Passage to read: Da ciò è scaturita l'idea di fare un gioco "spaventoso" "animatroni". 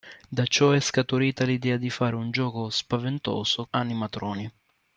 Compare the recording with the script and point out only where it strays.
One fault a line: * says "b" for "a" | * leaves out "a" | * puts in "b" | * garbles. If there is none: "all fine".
all fine